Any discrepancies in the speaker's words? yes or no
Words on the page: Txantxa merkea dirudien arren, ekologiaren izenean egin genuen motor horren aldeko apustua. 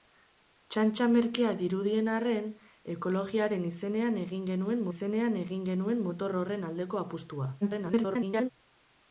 yes